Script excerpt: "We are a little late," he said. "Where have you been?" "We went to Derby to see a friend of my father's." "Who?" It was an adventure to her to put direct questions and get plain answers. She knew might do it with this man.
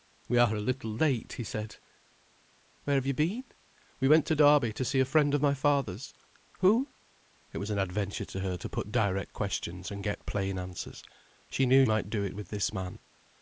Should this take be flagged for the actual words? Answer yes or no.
no